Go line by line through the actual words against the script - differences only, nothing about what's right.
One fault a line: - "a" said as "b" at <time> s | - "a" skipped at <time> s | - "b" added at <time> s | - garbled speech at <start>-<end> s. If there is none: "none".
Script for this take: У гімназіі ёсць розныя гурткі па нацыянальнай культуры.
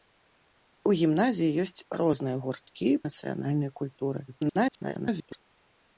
- "па" skipped at 2.9 s
- garbled speech at 4.3-5.4 s